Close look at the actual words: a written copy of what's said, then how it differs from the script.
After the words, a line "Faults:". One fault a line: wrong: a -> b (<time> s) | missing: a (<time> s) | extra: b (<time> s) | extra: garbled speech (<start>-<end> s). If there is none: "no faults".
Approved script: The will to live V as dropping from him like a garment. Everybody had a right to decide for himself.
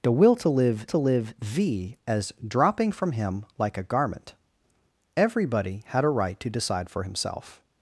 The will to live to live V as dropping from him like a garment. Everybody had a right to decide for himself.
Faults:
extra: to live (0.9 s)